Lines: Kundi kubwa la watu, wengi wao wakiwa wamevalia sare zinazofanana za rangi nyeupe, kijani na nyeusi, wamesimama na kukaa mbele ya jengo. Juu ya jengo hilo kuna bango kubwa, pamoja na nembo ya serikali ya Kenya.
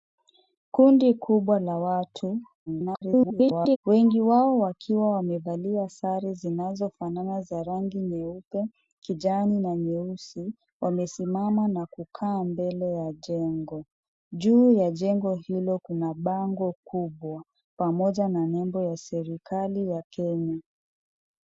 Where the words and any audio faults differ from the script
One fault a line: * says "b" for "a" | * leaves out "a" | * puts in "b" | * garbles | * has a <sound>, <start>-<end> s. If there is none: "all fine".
* garbles